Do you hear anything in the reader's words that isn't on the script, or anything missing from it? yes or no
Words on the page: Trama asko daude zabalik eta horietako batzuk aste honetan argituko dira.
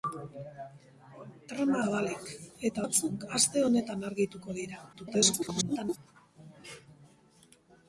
yes